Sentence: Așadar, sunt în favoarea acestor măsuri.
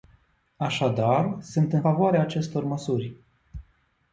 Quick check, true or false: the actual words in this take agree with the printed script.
true